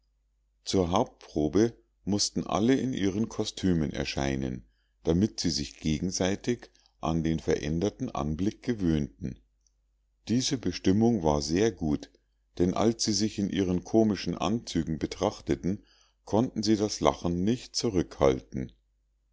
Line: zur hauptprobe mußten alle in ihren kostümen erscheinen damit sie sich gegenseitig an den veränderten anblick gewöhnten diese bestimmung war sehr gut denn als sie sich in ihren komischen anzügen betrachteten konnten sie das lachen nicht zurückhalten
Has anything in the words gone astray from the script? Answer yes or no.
no